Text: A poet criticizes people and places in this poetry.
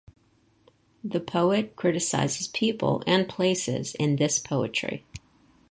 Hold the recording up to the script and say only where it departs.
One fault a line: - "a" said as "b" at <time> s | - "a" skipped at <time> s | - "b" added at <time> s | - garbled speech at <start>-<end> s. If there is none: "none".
- "A" said as "The" at 1.0 s